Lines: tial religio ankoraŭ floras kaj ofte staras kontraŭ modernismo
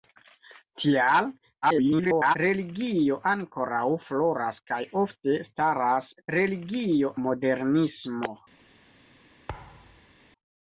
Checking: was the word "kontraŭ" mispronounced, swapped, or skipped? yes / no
yes